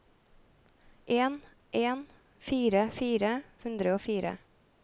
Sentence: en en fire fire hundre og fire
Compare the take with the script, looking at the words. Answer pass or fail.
pass